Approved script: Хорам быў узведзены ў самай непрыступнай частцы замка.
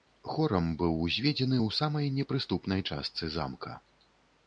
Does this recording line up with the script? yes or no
yes